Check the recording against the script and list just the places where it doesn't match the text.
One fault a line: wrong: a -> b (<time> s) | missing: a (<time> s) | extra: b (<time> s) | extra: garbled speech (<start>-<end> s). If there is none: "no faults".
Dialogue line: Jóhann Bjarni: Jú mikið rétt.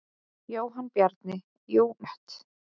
missing: mikið (1.9 s)